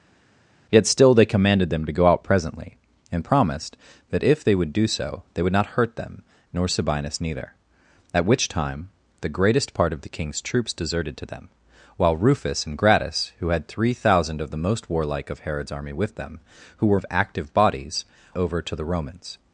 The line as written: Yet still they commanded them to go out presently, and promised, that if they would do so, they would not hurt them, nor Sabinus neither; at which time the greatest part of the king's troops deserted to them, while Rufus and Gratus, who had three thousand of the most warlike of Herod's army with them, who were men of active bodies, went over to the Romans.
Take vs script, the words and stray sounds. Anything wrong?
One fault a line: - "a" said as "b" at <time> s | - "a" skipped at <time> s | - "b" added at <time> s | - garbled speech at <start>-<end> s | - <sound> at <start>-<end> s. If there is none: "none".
- "men" skipped at 17.0 s
- "went" skipped at 18.0 s